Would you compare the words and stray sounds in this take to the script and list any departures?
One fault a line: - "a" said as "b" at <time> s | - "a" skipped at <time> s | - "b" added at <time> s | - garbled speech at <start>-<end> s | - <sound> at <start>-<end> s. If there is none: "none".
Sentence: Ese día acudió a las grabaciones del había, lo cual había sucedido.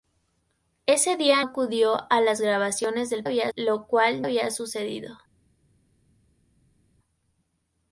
none